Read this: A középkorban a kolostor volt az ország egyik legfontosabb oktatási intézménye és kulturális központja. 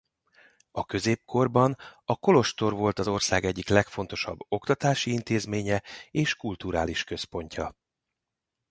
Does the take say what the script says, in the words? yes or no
yes